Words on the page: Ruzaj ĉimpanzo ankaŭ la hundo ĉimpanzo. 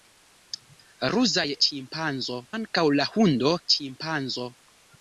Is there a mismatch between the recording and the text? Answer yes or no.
no